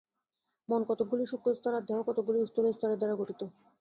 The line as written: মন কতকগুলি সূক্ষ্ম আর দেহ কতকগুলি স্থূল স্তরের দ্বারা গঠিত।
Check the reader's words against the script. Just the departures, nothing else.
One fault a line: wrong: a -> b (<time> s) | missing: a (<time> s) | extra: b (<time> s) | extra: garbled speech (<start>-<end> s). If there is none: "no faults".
extra: স্তর (1.6 s)